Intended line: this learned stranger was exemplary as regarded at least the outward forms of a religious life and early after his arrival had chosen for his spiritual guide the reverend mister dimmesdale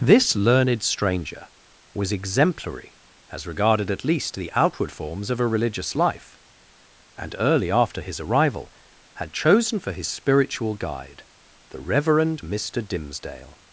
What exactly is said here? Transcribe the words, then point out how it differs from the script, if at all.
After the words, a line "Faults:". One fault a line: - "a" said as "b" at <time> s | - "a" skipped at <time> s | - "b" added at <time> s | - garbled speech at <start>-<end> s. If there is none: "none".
this learned stranger was exemplary as regarded at least the outward forms of a religious life and early after his arrival had chosen for his spiritual guide the reverend mister dimmesdale
Faults:
none